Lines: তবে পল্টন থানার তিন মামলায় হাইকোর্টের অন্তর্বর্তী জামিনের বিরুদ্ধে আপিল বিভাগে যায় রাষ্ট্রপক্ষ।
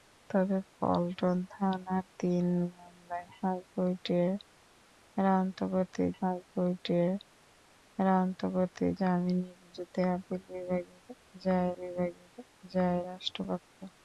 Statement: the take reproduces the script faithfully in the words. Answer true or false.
false